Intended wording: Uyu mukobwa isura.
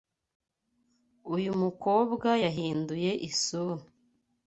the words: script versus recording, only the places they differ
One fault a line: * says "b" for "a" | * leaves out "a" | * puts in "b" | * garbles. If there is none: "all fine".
* puts in "yahinduye"